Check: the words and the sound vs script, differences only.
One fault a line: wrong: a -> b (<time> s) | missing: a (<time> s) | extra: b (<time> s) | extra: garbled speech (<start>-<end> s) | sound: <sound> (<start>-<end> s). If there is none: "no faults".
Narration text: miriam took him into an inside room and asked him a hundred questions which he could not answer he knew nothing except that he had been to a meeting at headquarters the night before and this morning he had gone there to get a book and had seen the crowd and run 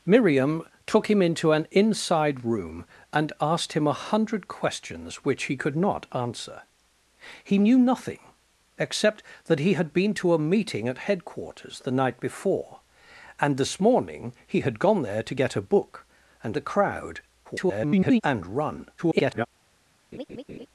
missing: had seen (16.6 s)
extra: garbled speech (17.4-18.2 s)
extra: garbled speech (19.0-19.5 s)
sound: laugh (20.1-20.7 s)